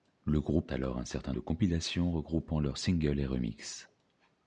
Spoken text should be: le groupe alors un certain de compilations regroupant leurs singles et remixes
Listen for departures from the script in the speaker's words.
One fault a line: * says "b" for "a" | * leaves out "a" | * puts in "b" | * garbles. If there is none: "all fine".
all fine